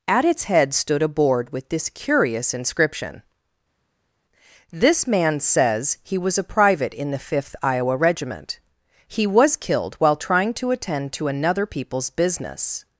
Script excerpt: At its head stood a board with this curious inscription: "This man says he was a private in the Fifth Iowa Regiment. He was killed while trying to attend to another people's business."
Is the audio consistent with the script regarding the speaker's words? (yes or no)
yes